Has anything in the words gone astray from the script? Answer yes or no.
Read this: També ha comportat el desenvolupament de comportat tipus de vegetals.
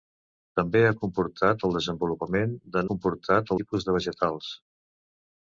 no